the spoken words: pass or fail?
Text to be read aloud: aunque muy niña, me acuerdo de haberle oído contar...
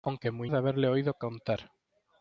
fail